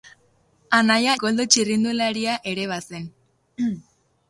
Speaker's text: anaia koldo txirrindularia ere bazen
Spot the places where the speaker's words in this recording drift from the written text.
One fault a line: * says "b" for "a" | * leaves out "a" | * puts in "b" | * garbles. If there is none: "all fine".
all fine